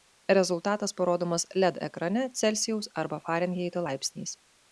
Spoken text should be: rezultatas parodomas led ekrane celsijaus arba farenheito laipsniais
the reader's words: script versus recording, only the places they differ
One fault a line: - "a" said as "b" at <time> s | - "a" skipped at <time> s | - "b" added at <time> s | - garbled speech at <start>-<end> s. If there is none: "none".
none